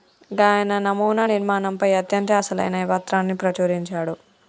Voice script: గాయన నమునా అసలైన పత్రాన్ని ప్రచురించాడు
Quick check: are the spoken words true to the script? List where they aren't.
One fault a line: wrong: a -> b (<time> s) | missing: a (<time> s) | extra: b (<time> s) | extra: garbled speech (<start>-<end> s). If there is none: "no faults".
extra: నిర్మాణంపై అత్యంత (1.2 s)